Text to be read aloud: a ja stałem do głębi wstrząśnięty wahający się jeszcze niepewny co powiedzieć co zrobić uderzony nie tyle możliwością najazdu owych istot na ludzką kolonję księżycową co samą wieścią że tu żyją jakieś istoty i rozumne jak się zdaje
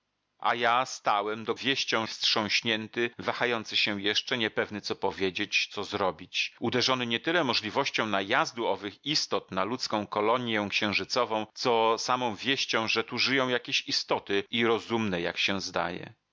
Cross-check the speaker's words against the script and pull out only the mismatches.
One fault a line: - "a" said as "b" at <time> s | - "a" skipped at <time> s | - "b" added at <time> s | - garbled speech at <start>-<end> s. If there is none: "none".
- "głębi" said as "wieścią" at 1.5 s